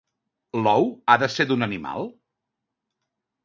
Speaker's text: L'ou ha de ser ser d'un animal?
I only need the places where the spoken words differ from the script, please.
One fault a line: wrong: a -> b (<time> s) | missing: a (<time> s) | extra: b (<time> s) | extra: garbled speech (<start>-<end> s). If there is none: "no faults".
missing: ser (1.5 s)